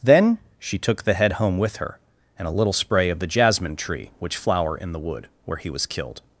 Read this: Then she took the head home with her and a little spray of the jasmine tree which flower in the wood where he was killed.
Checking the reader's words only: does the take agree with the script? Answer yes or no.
yes